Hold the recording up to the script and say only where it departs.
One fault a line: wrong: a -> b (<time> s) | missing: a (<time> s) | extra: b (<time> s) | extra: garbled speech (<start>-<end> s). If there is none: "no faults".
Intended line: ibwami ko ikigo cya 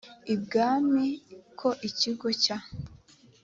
no faults